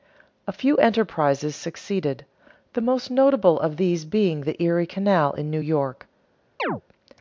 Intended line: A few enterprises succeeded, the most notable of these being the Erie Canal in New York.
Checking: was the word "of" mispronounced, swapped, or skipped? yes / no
no